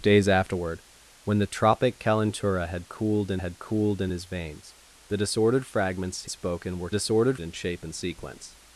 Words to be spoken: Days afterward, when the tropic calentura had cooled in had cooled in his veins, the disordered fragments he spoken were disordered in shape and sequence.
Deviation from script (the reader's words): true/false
false